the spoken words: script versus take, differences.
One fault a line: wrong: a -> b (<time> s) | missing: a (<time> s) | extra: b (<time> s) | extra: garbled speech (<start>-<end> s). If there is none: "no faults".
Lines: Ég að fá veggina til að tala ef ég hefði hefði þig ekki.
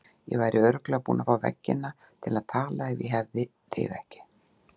extra: væri örugglega búin (0.4 s)
missing: hefði (3.5 s)